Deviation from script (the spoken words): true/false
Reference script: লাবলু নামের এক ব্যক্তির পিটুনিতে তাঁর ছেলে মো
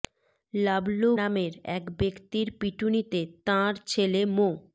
false